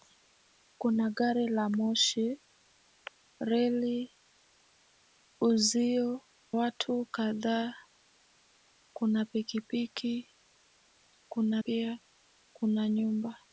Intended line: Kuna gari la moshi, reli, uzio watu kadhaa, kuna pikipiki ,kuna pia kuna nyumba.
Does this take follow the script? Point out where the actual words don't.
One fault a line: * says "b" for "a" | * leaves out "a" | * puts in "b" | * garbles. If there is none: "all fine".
all fine